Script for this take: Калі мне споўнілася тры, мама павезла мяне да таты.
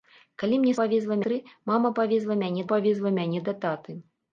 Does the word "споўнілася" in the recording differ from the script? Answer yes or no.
yes